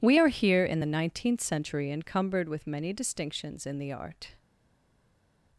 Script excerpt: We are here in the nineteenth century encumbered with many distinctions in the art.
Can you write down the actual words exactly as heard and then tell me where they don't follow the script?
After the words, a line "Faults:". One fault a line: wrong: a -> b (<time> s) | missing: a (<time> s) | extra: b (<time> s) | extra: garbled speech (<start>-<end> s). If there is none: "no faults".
We are here in the nineteenth century encumbered with many distinctions in the art.
Faults:
no faults